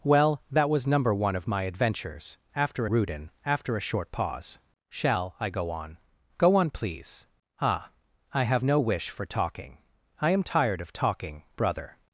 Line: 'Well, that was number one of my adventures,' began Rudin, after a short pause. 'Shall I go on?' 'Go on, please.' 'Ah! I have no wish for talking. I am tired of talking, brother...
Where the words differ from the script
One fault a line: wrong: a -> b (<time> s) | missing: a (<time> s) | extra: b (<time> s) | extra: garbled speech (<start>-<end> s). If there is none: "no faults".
wrong: began -> after (2.6 s)